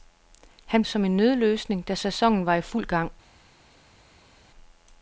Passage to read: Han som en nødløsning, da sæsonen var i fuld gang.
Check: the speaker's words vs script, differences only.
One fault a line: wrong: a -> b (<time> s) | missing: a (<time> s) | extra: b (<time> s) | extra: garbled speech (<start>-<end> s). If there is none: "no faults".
no faults